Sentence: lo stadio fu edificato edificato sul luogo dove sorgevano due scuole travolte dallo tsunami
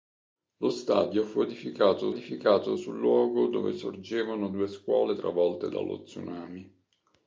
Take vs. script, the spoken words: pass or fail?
pass